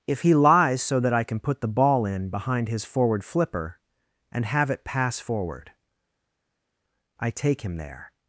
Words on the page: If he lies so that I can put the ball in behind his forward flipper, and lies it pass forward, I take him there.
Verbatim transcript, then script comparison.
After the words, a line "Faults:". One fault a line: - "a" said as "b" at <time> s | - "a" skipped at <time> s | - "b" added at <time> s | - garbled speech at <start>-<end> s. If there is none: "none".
If he lies so that I can put the ball in behind his forward flipper, and have it pass forward, I take him there.
Faults:
- "lies" said as "have" at 4.5 s